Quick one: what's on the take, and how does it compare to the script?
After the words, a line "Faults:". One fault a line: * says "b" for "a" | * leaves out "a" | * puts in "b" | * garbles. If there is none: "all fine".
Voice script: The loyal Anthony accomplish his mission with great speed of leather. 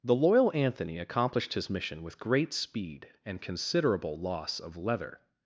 The loyal Anthony accomplished his mission with great speed and considerable loss of leather.
Faults:
* says "accomplished" for "accomplish"
* puts in "and considerable loss"